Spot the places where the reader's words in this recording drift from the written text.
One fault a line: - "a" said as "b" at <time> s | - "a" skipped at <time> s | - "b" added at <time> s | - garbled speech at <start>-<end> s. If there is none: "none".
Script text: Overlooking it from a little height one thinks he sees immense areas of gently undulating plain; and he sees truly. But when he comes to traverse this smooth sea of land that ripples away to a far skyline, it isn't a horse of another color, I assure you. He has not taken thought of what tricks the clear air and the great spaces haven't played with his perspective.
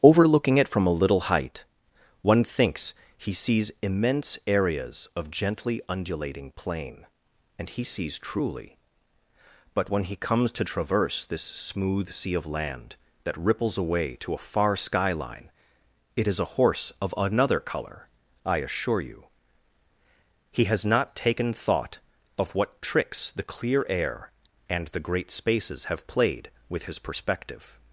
- "isn't" said as "is" at 16.3 s
- "haven't" said as "have" at 25.8 s